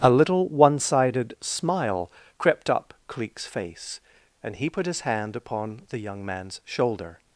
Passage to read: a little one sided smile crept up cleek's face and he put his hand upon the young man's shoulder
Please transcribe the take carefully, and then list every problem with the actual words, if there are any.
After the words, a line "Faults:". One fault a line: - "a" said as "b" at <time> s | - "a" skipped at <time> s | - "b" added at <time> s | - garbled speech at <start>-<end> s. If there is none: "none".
a little one sided smile crept up cleek's face and he put his hand upon the young man's shoulder
Faults:
none